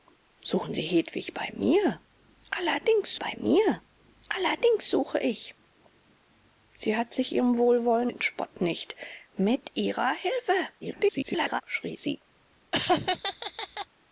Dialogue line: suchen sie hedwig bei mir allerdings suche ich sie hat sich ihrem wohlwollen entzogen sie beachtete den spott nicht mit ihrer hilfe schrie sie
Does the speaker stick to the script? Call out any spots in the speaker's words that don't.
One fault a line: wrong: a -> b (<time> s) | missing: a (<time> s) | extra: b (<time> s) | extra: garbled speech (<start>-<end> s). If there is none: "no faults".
extra: bei mir allerdings (3.2 s)
missing: entzogen sie beachtete (8.1 s)
extra: garbled speech (10.8-11.6 s)